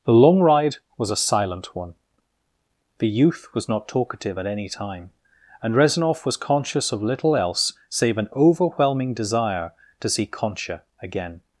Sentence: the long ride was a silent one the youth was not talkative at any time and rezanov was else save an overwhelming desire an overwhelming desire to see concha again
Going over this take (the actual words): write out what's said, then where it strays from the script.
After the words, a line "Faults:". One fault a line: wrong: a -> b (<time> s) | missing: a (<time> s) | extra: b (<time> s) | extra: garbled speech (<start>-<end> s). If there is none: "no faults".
the long ride was a silent one the youth was not talkative at any time and rezanov was conscious of little else save an overwhelming desire to see concha again
Faults:
wrong: else save an overwhelming desire -> conscious of little else save (6.4 s)